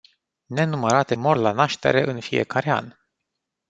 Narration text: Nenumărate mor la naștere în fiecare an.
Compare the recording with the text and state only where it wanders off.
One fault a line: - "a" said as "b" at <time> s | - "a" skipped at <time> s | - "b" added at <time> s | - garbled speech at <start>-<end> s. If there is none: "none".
none